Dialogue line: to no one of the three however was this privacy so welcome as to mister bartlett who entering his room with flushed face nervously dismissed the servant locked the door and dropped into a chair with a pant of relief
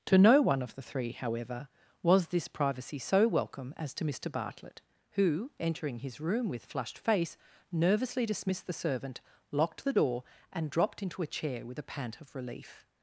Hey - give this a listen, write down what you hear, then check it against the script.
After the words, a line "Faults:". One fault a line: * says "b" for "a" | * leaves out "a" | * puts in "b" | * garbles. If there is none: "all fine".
to no one of the three however was this privacy so welcome as to mister bartlett who entering his room with flushed face nervously dismissed the servant locked the door and dropped into a chair with a pant of relief
Faults:
all fine